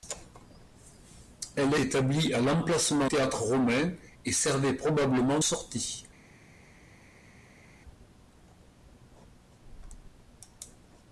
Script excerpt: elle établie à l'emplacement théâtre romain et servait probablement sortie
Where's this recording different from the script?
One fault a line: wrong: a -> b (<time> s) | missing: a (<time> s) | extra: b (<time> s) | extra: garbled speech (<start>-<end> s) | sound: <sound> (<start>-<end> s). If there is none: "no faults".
no faults